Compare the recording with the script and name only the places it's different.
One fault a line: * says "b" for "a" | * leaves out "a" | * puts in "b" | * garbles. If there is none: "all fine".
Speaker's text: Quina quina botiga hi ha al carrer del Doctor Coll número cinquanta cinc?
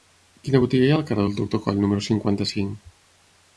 * leaves out "quina"